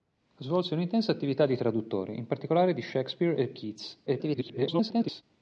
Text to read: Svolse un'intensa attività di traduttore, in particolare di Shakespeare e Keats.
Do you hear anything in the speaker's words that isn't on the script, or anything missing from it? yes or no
yes